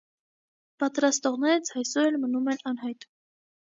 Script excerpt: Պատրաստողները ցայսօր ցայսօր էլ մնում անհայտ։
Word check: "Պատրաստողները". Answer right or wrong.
right